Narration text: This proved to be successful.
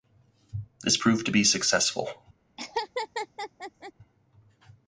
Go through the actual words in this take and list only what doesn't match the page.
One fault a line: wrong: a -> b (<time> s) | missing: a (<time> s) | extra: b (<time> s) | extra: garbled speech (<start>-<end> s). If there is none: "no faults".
no faults